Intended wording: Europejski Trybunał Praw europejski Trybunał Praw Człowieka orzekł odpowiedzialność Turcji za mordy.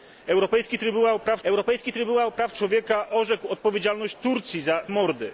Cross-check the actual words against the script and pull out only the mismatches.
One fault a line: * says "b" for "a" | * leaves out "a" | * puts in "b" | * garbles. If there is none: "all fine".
all fine